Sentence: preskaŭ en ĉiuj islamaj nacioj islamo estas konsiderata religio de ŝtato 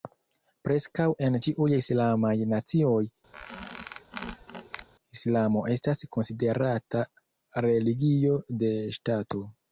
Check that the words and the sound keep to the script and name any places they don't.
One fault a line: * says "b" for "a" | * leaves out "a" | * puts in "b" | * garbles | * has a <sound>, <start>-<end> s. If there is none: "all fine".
* has a squeak, 3.3-4.9 s